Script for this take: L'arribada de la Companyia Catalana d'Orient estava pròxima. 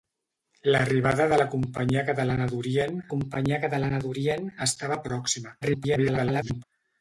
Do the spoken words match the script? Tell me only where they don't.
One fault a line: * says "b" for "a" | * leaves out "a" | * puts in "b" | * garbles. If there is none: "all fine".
* puts in "Companyia Catalana d'Orient"
* garbles